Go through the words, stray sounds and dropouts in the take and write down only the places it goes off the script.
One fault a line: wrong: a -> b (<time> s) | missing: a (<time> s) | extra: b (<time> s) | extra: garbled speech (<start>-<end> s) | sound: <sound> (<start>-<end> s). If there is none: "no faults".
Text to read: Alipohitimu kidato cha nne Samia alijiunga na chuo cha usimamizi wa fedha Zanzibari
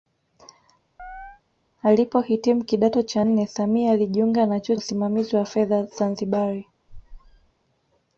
sound: chirp (1.0-1.4 s)
missing: cha (4.7 s)
sound: squeak (6.9-7.5 s)